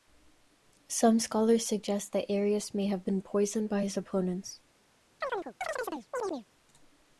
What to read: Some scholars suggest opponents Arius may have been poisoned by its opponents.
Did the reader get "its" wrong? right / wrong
wrong